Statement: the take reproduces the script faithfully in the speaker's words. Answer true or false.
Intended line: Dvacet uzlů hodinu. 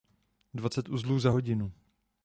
false